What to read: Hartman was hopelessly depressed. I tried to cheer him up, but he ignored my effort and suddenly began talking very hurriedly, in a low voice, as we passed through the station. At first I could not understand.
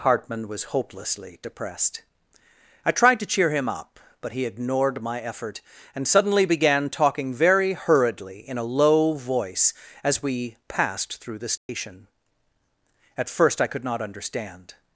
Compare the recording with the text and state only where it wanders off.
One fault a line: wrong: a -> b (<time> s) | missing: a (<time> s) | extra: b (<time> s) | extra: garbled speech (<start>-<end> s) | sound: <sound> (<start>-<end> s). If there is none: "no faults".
sound: dropout (11.6-11.7 s)